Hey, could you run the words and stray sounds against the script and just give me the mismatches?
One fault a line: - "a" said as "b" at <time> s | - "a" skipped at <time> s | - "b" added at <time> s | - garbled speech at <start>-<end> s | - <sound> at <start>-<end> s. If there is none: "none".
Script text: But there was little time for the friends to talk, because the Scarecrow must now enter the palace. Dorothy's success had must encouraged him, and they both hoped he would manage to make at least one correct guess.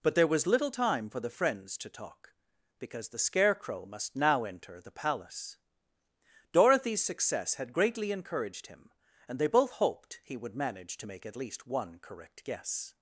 - "must" said as "greatly" at 7.7 s